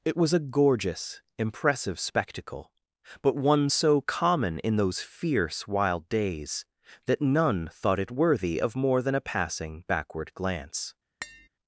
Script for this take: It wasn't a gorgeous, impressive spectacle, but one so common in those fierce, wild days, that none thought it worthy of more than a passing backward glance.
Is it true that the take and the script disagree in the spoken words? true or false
true